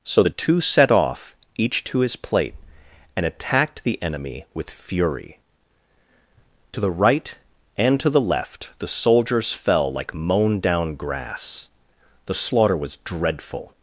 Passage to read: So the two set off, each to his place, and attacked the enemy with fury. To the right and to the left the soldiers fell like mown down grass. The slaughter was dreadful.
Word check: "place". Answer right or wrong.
wrong